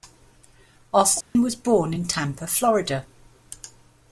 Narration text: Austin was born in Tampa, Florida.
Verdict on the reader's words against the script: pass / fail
pass